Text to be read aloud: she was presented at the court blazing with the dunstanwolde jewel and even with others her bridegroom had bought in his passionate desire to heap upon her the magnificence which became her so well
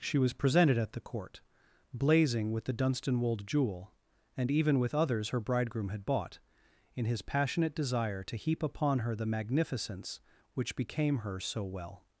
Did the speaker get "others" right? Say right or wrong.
right